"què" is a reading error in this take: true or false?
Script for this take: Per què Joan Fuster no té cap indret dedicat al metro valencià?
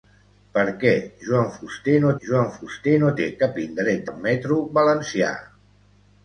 false